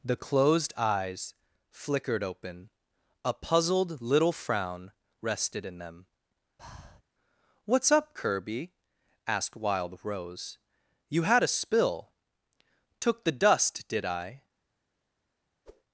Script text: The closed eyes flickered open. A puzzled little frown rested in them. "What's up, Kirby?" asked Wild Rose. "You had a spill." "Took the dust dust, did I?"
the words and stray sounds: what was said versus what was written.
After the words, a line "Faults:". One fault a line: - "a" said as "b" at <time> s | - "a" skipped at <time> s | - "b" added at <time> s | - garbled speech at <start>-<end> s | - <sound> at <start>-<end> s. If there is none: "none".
The closed eyes flickered open. A puzzled little frown rested in them. "What's up, Kirby?" asked Wild Rose. "You had a spill." "Took the dust, did I?"
Faults:
- breath at 6.6-7.0 s
- "dust" skipped at 13.9 s
- whoosh at 15.7-15.8 s